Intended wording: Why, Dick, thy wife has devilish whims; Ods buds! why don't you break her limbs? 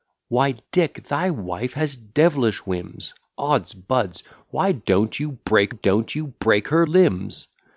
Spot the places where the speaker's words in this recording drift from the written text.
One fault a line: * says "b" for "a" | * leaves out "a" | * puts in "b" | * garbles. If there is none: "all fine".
* puts in "don't you break"